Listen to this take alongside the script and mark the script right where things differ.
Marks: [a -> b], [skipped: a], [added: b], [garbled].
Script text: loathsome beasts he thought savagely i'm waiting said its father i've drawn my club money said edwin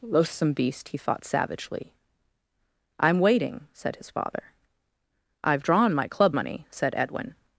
loathsome [beasts -> beast] he thought savagely i'm waiting said [its -> his] father i've drawn my club money said edwin